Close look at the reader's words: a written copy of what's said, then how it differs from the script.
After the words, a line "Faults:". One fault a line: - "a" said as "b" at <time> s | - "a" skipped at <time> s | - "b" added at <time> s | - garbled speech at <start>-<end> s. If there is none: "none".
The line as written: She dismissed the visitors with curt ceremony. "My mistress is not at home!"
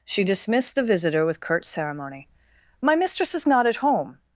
She dismissed the visitor with curt ceremony. "My mistress is not at home!"
Faults:
- "visitors" said as "visitor" at 0.8 s